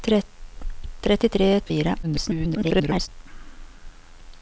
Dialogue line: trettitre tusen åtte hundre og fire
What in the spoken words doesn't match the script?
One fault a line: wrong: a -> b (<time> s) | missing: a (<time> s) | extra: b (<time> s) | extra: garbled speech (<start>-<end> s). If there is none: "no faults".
missing: tusen åtte hundre (1.5 s)
extra: garbled speech (2.0-3.1 s)